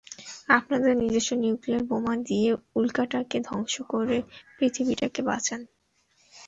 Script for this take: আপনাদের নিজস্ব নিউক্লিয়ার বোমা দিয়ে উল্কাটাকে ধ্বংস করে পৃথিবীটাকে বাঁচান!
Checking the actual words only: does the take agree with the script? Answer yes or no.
yes